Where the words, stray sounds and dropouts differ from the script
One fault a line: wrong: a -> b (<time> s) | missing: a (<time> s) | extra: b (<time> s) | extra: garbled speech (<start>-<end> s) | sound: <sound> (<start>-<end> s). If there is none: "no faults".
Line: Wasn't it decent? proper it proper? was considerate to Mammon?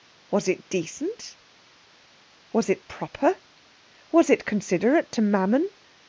wrong: Wasn't -> Was (0.3 s)
wrong: proper -> was (2.5 s)
extra: it (4.3 s)